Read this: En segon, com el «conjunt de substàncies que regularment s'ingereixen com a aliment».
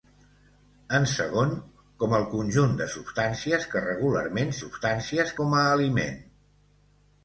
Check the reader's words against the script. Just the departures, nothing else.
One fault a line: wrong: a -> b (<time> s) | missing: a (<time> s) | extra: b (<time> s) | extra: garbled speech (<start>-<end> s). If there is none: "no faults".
wrong: s'ingereixen -> substàncies (4.6 s)